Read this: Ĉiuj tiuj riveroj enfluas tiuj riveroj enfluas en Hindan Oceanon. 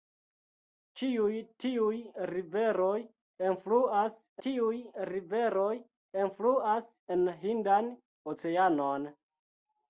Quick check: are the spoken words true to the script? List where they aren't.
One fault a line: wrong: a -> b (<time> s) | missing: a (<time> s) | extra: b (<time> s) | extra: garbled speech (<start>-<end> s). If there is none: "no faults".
no faults